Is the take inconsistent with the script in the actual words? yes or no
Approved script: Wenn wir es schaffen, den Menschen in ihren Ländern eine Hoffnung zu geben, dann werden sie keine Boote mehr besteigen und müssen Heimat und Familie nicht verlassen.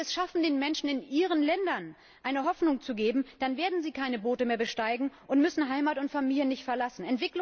no